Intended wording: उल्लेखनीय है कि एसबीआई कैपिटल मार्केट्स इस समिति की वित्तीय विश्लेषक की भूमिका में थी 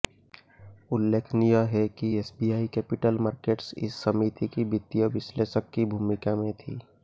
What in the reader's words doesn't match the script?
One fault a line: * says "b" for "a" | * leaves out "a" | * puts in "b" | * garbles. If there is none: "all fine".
all fine